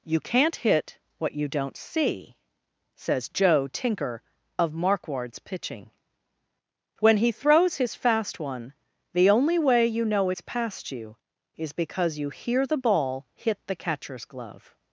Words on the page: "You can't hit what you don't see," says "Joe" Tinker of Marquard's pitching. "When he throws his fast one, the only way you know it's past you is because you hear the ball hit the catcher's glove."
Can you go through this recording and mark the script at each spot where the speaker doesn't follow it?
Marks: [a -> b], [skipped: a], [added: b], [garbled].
"You can't hit what you don't see," says "Joe" Tinker of Marquard's pitching. "When he throws his fast one, the only way you know it's past you is because you hear the ball hit the catcher's glove."